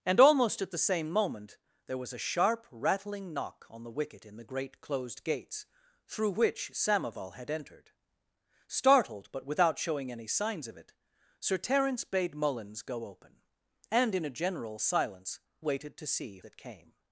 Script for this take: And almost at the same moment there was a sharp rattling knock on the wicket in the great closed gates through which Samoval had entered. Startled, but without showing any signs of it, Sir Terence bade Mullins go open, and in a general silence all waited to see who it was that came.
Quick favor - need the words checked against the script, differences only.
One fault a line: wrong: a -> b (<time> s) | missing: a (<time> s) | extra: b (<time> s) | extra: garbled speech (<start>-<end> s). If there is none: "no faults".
missing: all (15.4 s)
missing: who it was (16.4 s)